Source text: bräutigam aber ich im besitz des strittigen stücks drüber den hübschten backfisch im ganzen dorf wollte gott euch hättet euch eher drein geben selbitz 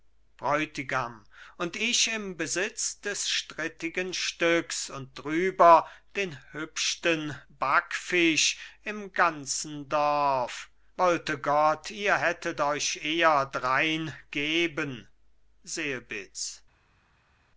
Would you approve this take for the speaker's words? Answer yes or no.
no